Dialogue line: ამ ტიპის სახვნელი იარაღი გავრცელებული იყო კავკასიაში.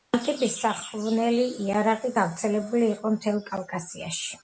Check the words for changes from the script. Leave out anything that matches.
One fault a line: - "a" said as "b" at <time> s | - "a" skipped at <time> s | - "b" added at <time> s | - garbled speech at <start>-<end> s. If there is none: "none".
- "მთელ" added at 3.2 s